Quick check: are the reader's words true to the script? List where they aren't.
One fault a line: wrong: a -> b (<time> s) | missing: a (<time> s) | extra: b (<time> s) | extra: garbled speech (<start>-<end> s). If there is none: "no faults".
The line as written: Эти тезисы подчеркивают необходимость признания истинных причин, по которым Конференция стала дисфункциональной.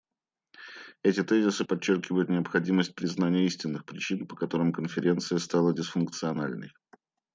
no faults